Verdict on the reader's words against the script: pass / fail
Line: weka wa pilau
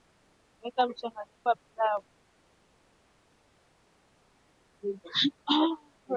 fail